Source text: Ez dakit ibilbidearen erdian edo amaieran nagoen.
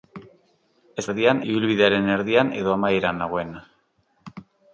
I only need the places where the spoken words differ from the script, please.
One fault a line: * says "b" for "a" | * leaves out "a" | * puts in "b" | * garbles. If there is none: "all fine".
* says "erdian" for "dakit"